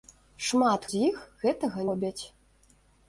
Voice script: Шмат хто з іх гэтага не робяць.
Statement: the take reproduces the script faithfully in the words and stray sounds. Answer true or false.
false